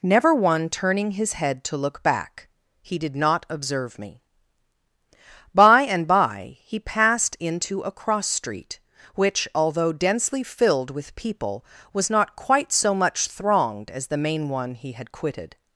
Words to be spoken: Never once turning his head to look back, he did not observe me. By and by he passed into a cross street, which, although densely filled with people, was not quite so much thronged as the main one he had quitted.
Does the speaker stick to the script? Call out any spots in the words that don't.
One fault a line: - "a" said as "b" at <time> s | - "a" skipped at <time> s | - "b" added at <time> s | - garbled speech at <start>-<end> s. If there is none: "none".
- "once" said as "one" at 0.3 s